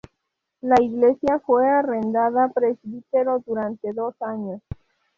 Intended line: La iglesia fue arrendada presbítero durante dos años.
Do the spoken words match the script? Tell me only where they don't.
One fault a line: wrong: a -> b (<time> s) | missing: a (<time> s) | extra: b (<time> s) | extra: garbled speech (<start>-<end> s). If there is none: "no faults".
no faults